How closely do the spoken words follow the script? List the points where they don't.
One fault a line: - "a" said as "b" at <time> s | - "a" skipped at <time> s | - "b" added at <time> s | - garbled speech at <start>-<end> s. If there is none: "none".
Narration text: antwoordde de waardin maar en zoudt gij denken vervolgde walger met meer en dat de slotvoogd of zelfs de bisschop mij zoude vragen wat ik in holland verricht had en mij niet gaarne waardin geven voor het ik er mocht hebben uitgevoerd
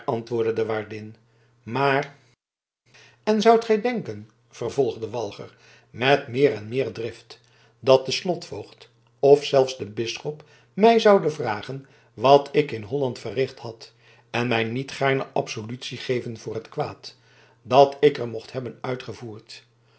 - "meer drift" added at 6.7 s
- "waardin" said as "absolutie" at 15.3 s
- "kwaad dat" added at 16.7 s